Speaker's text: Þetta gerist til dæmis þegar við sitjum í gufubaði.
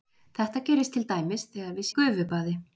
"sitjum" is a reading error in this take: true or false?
true